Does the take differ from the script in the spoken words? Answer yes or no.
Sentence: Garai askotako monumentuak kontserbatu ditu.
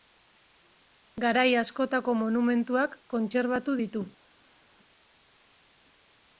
no